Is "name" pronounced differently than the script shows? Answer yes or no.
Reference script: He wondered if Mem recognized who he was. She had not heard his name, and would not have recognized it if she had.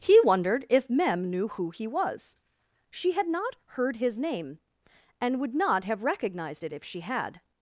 no